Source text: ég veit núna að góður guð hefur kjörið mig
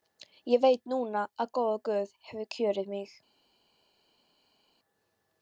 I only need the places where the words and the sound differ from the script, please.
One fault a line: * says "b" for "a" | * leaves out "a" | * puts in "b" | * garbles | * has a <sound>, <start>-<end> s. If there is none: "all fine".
all fine